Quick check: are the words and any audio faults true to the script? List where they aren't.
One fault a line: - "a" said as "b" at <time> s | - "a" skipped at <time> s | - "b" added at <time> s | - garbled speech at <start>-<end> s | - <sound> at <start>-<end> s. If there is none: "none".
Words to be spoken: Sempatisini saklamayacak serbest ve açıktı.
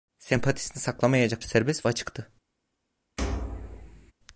- thud at 3.2-4.1 s